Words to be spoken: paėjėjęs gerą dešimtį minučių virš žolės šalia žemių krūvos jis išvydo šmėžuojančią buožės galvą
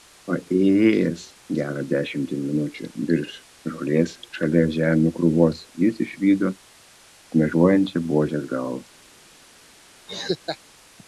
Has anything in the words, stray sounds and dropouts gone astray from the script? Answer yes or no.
yes